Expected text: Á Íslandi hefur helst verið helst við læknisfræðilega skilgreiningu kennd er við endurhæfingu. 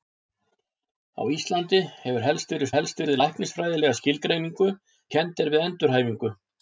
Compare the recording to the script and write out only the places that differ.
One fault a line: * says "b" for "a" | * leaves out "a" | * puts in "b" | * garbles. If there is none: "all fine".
all fine